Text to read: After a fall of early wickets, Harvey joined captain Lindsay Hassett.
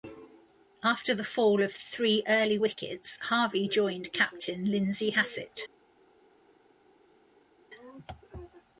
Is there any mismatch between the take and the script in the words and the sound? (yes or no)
yes